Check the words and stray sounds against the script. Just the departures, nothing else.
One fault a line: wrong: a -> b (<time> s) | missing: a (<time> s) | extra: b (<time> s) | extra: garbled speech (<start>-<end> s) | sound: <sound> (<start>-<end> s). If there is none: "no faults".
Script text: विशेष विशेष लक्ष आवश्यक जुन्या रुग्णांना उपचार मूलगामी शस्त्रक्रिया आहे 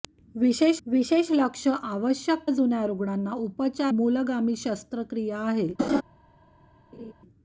sound: laugh (5.8-6.0 s)
sound: laugh (6.9-7.1 s)